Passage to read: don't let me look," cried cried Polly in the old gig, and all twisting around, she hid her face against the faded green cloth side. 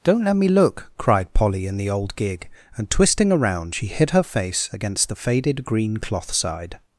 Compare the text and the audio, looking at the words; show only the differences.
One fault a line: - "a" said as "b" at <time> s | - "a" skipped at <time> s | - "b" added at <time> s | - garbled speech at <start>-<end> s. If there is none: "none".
- "cried" skipped at 1.3 s
- "all" skipped at 2.9 s